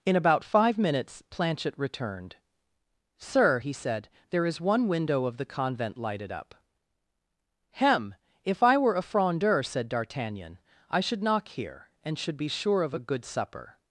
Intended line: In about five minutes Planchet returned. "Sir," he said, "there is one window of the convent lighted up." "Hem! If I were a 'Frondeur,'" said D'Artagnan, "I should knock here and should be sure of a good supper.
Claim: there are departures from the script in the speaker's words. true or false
false